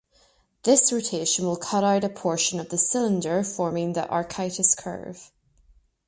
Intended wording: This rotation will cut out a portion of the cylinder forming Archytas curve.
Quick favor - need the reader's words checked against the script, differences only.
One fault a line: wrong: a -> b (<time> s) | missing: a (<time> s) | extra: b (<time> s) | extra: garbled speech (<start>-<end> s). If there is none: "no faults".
extra: the (3.9 s)